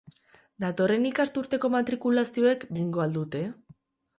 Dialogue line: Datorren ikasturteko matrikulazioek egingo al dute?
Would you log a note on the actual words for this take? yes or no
no